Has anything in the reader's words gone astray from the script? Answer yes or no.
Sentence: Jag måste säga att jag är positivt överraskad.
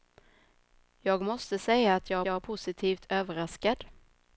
yes